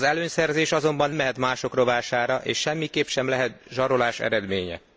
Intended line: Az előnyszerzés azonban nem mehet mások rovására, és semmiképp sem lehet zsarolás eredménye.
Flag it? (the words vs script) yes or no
yes